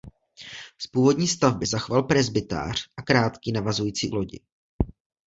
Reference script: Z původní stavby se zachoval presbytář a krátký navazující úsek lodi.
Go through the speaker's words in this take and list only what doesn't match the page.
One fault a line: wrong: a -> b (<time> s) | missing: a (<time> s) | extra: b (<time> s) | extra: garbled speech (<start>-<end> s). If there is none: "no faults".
missing: se (1.7 s)
missing: úsek (4.1 s)